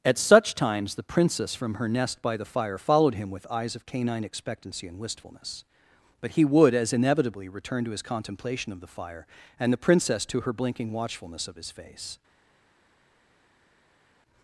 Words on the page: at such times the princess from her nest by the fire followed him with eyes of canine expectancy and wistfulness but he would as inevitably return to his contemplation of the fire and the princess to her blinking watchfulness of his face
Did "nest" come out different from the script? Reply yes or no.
no